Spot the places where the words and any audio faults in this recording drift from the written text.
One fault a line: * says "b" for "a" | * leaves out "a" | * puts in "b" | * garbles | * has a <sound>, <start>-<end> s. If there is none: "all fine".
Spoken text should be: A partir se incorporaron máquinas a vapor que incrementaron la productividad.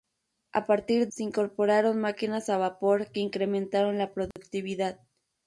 * has a dropout, 4.3-4.4 s